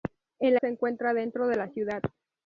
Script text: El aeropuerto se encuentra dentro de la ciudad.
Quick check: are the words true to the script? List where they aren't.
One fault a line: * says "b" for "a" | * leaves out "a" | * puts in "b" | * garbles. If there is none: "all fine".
* leaves out "aeropuerto"